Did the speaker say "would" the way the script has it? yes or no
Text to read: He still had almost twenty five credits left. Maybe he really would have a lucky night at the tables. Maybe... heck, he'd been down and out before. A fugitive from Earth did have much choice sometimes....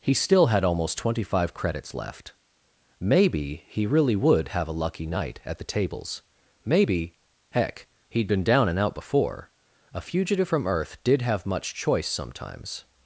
yes